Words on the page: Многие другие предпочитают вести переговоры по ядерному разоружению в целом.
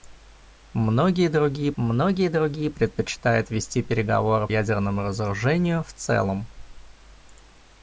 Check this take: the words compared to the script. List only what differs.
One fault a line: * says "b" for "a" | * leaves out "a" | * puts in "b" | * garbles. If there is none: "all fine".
* puts in "многие другие"
* leaves out "по"